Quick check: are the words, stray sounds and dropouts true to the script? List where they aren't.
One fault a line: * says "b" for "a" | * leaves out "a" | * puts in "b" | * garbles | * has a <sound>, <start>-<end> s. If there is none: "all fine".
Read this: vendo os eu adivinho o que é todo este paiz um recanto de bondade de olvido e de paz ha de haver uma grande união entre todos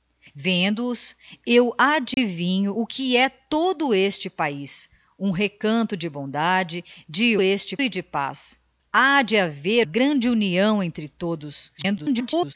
* has a dropout, 2.1-2.2 s
* says "este" for "olvido"
* leaves out "uma"
* garbles